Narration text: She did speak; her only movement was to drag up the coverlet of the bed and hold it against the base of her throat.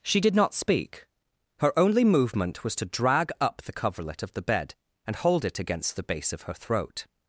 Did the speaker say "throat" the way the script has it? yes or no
yes